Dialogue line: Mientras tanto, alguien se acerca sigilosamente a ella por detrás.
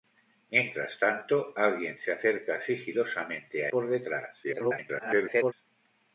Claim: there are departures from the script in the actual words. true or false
true